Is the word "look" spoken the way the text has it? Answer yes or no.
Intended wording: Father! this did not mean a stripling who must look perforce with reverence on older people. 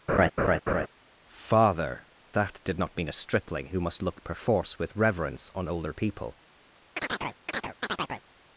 yes